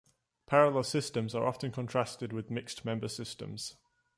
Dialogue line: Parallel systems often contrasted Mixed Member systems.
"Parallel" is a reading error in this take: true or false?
false